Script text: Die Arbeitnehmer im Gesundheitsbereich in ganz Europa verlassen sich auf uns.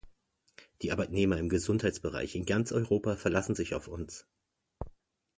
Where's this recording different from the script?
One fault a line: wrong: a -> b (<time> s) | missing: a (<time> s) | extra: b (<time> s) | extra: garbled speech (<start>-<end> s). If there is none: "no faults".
no faults